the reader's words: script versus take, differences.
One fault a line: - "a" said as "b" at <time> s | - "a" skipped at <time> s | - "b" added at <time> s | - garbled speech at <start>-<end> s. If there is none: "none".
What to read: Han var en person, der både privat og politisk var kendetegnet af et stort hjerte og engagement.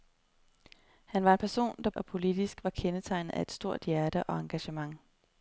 - "både privat" skipped at 1.9 s